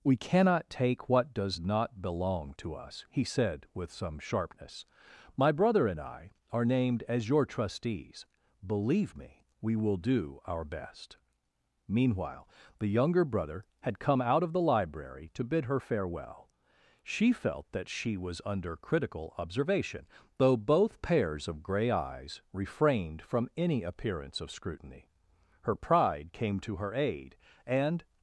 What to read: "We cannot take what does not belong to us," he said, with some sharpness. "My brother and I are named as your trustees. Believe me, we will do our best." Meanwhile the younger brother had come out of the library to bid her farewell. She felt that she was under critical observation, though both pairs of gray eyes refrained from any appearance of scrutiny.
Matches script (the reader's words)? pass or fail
fail